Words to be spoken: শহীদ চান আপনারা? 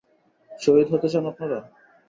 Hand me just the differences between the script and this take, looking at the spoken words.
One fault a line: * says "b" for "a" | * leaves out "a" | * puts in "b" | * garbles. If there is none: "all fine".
* puts in "হতে"